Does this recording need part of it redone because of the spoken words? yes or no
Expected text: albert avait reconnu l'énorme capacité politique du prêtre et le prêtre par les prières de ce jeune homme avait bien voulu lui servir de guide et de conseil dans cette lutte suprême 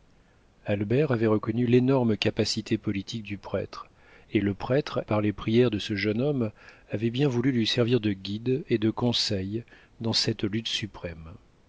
no